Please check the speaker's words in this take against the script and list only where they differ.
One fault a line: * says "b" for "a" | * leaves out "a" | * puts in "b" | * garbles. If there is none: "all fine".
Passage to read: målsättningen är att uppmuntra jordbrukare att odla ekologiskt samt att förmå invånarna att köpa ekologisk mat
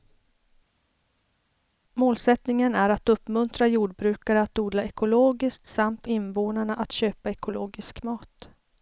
* leaves out "att förmå"